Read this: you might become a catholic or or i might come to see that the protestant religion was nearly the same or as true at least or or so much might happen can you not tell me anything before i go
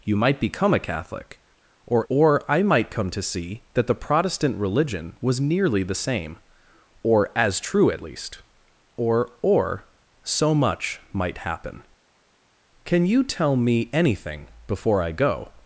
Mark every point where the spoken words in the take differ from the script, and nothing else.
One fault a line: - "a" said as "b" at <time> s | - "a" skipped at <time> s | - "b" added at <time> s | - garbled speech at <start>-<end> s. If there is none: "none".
- "not" skipped at 13.2 s